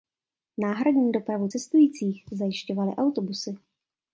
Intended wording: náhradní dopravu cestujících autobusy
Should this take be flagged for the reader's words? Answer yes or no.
yes